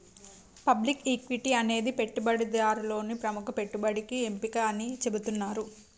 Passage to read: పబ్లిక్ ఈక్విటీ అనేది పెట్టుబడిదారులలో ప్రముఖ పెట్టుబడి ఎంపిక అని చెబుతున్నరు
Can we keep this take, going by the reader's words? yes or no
yes